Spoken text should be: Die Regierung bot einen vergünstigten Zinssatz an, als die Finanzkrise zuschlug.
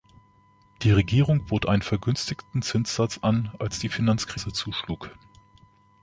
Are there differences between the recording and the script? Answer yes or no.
no